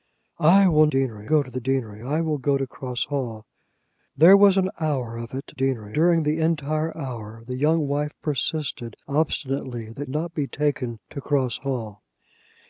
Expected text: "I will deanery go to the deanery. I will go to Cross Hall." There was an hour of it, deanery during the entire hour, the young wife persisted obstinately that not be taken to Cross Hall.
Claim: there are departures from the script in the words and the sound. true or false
false